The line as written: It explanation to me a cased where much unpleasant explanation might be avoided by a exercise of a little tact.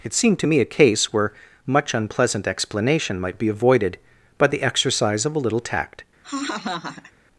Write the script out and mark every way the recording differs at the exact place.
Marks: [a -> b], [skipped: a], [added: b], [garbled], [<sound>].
It [explanation -> seemed] to me a [cased -> case] where much unpleasant explanation might be avoided by [a -> the] exercise of a little tact. [laugh]